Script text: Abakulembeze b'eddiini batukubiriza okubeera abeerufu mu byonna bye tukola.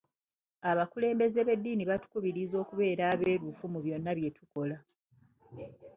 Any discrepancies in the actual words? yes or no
no